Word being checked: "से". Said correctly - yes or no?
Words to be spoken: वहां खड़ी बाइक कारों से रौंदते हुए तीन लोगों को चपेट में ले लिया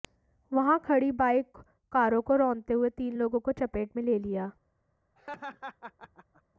no